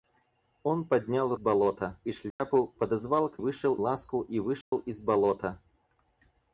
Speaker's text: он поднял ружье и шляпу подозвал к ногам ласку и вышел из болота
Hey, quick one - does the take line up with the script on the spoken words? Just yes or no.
no